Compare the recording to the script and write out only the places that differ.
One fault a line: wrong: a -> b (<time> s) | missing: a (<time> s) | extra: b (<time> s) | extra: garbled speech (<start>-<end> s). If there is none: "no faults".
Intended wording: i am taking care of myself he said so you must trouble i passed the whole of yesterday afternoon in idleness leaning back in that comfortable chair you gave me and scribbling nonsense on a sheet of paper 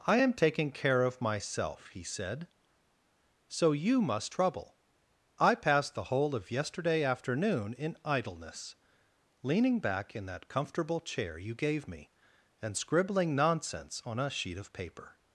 no faults